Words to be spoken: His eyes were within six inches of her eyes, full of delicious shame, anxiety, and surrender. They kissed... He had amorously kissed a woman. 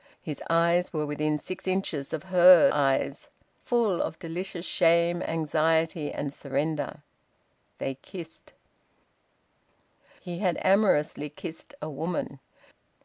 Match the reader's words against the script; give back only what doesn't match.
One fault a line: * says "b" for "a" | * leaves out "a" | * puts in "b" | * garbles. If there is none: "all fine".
all fine